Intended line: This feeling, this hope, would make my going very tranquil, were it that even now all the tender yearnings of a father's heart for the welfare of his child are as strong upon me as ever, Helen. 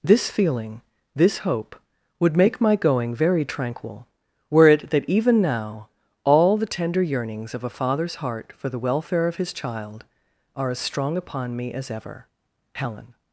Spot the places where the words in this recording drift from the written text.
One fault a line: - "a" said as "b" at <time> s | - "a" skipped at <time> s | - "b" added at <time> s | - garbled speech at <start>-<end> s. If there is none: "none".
none